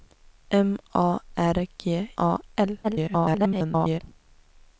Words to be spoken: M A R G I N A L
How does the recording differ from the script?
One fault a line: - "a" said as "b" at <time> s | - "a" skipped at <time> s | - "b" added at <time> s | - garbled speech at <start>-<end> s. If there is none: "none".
- "I N" skipped at 2.1 s
- garbled speech at 2.8-4.0 s